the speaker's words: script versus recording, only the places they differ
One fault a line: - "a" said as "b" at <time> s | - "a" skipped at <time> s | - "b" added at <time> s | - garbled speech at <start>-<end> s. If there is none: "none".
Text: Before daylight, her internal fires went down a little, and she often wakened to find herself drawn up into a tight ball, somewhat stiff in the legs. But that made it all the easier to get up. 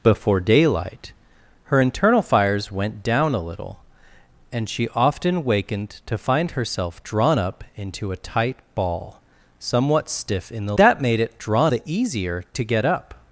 - "legs But" skipped at 10.7 s
- "all" said as "drawn" at 11.4 s